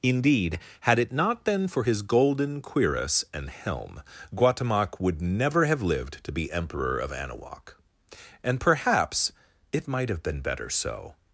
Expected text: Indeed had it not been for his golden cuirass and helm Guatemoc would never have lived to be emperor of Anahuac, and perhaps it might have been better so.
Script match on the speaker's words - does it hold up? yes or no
yes